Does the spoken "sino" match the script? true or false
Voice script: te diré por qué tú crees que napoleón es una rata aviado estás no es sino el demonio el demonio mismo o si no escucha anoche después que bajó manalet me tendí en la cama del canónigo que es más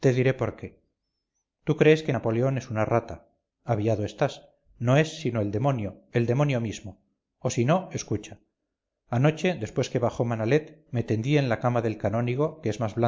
true